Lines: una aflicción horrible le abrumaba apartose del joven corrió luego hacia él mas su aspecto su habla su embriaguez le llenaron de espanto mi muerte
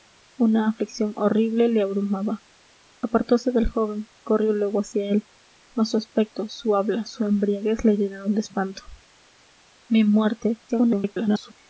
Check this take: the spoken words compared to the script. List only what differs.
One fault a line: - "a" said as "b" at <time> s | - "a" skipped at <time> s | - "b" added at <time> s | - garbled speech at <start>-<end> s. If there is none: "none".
- garbled speech at 10.7-11.5 s